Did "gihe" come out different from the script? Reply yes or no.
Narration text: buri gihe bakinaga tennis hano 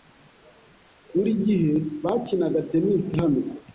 no